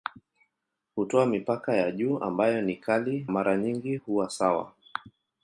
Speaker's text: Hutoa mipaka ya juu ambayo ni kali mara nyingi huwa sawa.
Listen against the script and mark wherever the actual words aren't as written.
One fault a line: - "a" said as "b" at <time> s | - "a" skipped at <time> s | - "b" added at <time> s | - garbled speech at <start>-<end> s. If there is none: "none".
none